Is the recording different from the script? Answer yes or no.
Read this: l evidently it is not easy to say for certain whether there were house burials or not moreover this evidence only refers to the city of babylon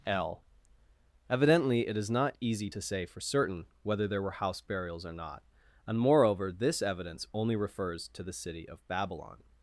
yes